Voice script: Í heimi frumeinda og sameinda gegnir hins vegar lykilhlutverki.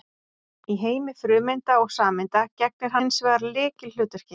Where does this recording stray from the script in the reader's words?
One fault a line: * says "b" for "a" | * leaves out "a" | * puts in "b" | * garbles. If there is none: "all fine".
all fine